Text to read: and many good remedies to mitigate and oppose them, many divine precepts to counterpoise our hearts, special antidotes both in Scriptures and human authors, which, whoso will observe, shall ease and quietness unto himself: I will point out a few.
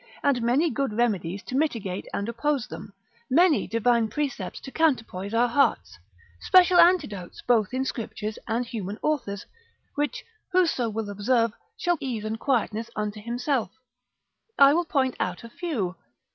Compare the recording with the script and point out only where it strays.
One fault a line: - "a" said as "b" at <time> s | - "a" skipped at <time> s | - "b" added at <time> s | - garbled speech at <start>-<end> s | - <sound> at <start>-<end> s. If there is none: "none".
none